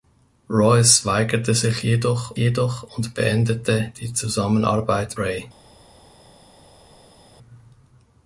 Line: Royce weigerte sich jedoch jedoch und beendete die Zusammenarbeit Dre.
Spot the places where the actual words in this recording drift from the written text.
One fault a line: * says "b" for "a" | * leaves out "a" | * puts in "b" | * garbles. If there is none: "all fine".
all fine